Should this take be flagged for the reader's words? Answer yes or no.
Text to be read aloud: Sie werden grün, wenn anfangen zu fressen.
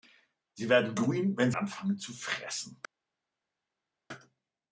no